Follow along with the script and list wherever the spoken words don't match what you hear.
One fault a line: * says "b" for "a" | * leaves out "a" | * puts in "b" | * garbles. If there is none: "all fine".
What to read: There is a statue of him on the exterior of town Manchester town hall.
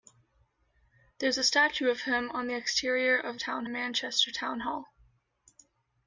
all fine